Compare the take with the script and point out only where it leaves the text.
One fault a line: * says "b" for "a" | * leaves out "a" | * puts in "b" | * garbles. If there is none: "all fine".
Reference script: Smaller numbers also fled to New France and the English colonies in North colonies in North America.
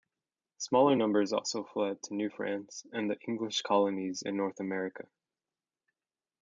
* leaves out "colonies in North"